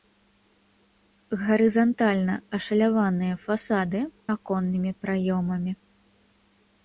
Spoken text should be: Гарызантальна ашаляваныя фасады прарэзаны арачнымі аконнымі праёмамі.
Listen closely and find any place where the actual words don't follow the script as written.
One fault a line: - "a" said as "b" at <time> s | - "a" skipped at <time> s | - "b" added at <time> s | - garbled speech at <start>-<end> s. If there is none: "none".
- "прарэзаны арачнымі" skipped at 4.0 s